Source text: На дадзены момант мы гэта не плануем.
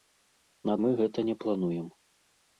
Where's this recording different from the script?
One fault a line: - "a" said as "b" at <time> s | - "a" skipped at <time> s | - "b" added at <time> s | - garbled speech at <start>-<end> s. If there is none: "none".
- "дадзены момант" skipped at 0.8 s